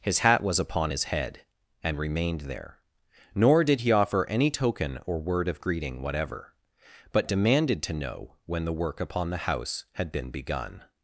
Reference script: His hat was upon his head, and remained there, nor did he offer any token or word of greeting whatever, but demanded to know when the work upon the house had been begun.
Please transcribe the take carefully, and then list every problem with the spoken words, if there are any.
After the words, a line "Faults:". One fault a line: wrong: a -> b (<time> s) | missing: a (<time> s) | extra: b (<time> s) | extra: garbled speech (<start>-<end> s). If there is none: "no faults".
His hat was upon his head, and remained there, nor did he offer any token or word of greeting whatever, but demanded to know when the work upon the house had been begun.
Faults:
no faults